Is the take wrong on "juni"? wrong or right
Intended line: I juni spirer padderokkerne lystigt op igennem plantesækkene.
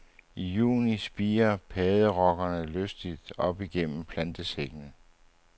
right